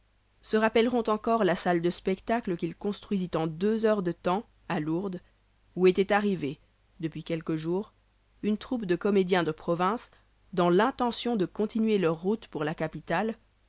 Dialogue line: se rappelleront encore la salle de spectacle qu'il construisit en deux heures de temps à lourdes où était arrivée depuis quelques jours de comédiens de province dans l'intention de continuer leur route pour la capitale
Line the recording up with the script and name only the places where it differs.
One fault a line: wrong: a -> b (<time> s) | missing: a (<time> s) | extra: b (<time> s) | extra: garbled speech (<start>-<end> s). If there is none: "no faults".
extra: une troupe (8.4 s)